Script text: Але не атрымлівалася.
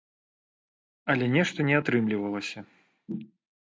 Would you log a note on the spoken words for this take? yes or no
yes